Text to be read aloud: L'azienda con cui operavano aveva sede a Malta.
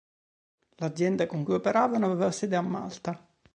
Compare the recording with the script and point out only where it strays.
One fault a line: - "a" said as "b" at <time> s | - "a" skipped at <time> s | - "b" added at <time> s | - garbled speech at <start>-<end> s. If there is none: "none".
none